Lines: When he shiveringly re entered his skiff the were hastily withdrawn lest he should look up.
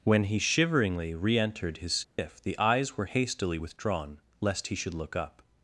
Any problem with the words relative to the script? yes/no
yes